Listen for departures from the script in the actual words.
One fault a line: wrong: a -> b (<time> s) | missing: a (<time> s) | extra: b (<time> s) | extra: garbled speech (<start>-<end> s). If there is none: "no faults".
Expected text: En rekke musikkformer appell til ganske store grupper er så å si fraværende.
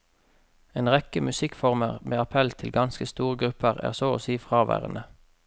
extra: med (2.0 s)